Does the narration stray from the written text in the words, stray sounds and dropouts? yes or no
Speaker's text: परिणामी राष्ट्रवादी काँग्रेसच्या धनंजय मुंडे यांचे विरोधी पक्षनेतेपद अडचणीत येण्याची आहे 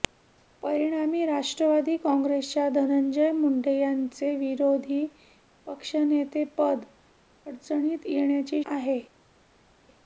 no